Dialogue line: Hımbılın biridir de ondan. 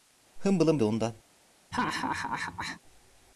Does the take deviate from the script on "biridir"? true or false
true